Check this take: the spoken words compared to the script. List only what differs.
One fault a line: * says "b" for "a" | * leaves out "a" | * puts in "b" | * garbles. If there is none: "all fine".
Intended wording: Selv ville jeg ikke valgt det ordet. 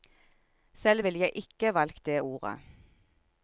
all fine